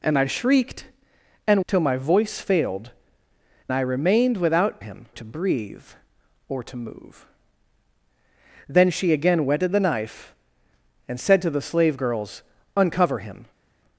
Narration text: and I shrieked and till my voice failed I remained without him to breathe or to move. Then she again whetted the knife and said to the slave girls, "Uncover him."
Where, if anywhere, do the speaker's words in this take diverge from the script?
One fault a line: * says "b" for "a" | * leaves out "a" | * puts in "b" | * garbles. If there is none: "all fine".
all fine